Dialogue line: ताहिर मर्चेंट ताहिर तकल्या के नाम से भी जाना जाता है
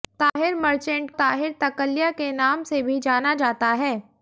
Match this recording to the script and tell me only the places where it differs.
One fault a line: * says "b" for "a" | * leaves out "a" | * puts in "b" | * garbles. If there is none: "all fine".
all fine